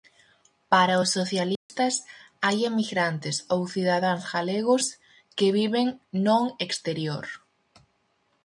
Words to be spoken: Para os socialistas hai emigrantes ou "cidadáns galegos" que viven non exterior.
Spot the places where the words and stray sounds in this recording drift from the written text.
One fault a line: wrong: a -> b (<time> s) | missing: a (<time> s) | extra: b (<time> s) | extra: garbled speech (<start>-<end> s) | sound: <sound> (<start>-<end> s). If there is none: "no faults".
sound: dropout (1.6-1.7 s)